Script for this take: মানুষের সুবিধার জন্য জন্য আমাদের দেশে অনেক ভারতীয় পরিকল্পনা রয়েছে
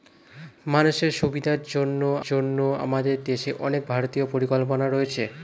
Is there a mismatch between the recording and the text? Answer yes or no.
no